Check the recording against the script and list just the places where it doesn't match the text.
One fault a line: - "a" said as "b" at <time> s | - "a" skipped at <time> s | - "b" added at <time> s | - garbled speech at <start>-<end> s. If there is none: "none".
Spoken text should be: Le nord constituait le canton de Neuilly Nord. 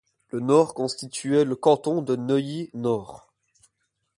none